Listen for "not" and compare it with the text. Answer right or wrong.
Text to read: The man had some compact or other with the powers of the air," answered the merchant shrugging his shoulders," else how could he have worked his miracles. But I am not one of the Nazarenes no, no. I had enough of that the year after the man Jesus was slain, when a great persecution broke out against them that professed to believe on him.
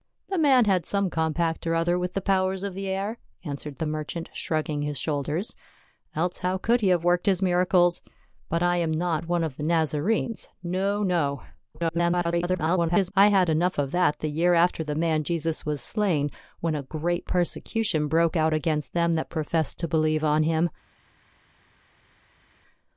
right